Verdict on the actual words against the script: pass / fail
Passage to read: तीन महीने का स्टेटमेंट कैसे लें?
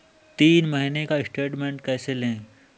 pass